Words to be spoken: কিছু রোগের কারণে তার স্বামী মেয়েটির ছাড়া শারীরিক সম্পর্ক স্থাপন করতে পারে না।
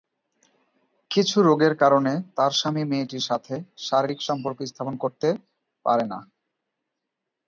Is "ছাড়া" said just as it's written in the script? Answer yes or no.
no